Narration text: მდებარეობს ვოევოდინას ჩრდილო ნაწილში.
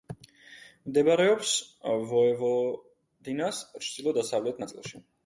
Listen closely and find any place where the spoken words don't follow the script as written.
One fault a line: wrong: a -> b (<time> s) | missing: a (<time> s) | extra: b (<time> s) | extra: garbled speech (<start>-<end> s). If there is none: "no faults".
extra: დასავლეთ (4.2 s)